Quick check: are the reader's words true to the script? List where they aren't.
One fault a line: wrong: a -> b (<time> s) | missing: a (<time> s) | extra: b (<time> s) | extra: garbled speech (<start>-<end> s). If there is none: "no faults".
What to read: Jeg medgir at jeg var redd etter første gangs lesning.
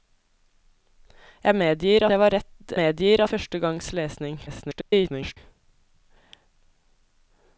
missing: at (2.0 s)
wrong: etter -> medgir (2.7 s)
extra: garbled speech (4.5-5.4 s)